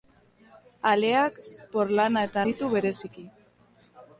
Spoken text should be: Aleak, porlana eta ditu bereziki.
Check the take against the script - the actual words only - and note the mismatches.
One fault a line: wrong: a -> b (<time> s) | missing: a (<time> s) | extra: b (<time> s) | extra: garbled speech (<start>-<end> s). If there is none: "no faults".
no faults